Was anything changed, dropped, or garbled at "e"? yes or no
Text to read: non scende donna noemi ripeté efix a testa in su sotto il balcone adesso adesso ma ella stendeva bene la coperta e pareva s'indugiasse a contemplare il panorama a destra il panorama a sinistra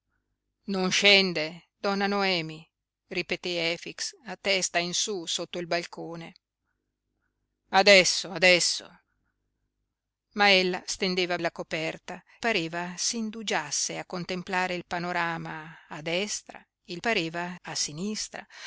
yes